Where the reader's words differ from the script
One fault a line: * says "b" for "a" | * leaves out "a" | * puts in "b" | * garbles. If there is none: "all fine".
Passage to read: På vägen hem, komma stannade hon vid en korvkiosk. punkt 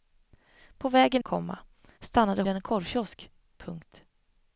* leaves out "hem"
* leaves out "hon vid"